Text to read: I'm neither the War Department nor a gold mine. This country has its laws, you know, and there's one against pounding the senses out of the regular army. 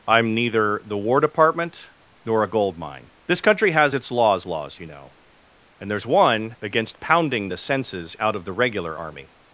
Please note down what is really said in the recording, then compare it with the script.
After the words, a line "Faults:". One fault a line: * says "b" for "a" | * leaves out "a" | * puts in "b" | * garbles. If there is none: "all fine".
I'm neither the War Department nor a gold mine. This country has its laws laws, you know, and there's one against pounding the senses out of the regular army.
Faults:
* puts in "laws"